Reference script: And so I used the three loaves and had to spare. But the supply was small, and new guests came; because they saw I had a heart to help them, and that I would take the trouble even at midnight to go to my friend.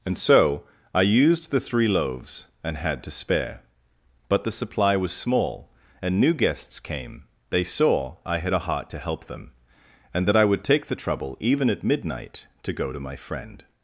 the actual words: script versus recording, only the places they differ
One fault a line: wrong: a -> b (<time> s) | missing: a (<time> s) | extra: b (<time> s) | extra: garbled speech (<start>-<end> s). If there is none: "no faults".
missing: because (7.2 s)